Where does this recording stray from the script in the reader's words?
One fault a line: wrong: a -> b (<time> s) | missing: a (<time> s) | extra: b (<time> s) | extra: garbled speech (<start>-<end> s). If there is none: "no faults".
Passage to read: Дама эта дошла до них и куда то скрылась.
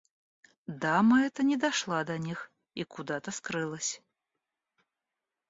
extra: не (1.4 s)